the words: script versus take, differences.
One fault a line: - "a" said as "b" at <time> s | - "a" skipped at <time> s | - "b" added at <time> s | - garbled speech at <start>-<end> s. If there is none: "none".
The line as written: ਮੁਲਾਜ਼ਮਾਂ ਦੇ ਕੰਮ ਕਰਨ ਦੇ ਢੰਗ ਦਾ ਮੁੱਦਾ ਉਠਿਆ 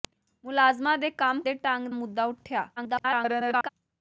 - "ਕਰਨ" skipped at 1.4 s
- "ਦਾ" skipped at 1.9 s
- garbled speech at 2.8-3.7 s